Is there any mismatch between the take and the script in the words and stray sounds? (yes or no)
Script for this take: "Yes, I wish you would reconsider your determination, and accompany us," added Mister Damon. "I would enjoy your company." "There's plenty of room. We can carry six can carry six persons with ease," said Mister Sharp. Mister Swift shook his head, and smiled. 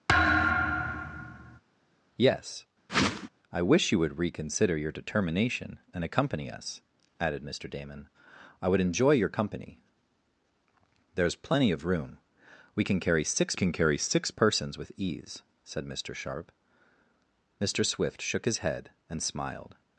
yes